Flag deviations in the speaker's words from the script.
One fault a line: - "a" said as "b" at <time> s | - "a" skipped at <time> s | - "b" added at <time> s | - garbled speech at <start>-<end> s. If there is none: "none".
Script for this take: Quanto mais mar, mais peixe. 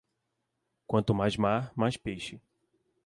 none